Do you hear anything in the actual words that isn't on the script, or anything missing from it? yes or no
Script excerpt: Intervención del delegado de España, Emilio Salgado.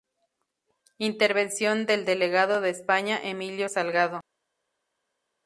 no